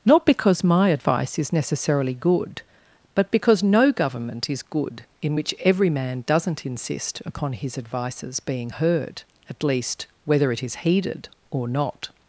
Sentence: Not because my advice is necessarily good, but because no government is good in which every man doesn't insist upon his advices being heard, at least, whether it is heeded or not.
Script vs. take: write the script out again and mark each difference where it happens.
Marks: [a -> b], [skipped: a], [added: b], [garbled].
Not because my advice is necessarily good, but because no government is good in which every man doesn't insist upon his advices being heard, at least, whether it is heeded or not.